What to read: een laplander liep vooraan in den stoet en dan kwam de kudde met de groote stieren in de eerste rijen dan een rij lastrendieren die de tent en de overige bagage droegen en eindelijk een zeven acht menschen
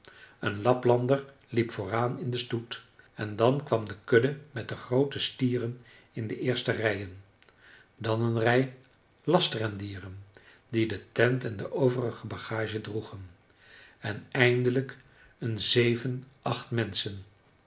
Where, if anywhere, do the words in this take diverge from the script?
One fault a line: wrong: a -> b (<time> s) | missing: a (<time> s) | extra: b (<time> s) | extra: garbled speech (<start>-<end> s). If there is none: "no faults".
no faults